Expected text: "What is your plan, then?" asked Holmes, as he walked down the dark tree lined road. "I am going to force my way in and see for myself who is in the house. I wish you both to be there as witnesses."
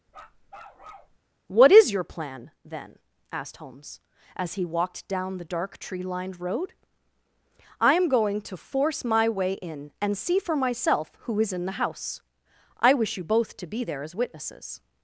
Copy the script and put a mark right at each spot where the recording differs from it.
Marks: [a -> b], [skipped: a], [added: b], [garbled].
"What is your plan, then?" asked Holmes, as he walked down the dark tree lined road. "I am going to force my way in and see for myself who is in the house. I wish you both to be there as witnesses."